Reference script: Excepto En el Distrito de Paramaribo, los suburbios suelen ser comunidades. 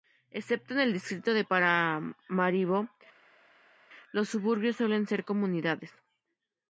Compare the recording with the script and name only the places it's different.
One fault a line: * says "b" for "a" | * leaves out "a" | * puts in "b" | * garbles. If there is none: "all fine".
all fine